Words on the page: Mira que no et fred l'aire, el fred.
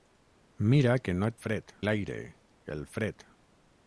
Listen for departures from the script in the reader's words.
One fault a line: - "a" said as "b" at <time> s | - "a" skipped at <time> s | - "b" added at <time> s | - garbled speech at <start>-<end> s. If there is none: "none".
none